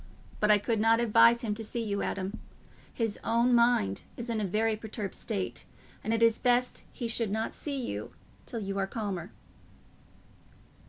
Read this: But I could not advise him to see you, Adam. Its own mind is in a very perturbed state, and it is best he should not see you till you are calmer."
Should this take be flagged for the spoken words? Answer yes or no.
yes